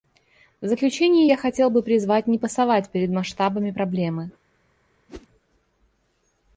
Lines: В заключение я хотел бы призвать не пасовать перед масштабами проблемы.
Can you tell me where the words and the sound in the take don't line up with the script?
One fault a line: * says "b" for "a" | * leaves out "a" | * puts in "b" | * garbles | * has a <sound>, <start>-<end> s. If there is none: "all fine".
* has a whoosh, 5.1-5.3 s